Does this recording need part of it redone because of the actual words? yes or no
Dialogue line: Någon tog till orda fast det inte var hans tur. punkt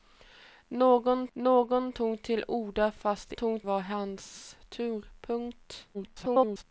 yes